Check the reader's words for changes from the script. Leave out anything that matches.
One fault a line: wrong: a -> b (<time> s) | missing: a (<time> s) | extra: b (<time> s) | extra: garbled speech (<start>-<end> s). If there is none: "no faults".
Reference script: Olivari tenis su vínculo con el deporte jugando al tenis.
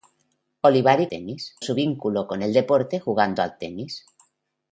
no faults